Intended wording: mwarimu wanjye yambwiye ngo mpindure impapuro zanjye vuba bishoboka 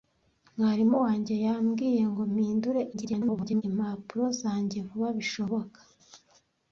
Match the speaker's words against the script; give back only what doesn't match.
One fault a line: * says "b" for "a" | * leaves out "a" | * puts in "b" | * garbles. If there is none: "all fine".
* garbles